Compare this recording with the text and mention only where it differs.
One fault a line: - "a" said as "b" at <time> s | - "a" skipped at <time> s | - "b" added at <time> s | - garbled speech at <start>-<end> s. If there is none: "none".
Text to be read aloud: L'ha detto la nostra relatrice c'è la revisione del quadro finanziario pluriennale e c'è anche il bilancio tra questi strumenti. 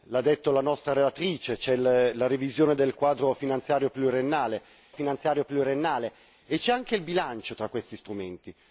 - "finanziario pluriennale" added at 4.9 s